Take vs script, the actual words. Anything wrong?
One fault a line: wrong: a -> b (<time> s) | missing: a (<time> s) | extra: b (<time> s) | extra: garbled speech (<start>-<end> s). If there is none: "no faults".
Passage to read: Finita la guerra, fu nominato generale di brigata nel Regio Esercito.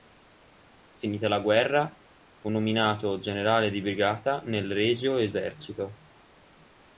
no faults